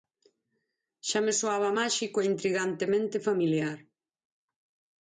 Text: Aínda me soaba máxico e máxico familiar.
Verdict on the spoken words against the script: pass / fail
fail